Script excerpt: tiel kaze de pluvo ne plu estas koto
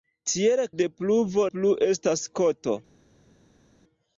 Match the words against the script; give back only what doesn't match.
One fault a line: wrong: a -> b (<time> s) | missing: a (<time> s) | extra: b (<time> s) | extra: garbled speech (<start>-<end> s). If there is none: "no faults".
missing: kaze (0.6 s)
missing: ne (1.5 s)